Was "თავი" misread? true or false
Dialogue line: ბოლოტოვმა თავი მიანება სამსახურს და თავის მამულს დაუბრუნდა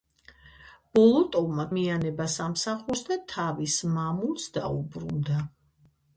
true